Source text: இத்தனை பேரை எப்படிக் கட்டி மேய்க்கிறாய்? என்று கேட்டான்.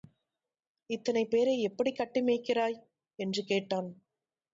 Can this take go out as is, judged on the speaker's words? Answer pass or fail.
pass